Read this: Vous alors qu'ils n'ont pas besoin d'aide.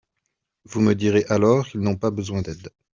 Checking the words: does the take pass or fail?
fail